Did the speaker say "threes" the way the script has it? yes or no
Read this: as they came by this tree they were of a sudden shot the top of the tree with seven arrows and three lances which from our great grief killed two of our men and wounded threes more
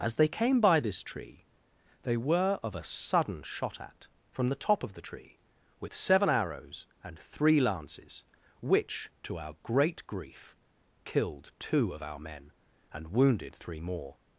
no